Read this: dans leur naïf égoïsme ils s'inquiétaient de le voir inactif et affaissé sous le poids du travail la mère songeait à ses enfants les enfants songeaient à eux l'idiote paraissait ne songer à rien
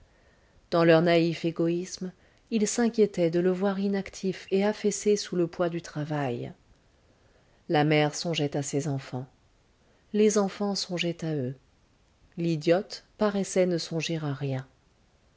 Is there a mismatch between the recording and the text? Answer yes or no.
no